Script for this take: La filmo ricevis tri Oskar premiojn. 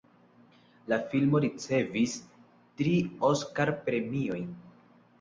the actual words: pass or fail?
pass